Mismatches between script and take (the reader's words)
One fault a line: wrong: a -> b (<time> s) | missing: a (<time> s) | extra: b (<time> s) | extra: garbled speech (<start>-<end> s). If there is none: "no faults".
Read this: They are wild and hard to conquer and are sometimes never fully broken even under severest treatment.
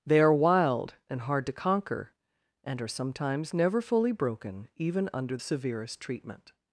no faults